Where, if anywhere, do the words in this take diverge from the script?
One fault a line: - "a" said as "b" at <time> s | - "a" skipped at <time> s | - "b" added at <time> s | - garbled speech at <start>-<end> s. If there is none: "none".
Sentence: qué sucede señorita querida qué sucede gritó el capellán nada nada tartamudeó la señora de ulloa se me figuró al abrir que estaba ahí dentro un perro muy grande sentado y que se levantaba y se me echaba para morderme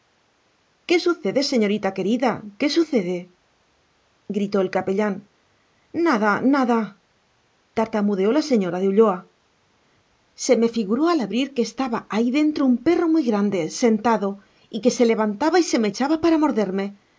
none